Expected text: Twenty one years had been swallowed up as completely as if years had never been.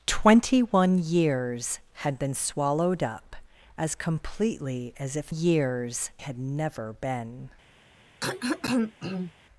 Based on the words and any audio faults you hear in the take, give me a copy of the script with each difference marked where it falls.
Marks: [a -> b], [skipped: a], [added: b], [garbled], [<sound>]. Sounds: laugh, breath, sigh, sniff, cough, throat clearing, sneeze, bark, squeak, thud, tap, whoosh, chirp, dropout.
Twenty one years had been swallowed up as completely as if years had never been. [throat clearing]